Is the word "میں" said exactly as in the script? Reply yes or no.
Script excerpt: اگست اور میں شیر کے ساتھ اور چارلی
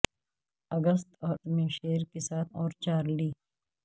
yes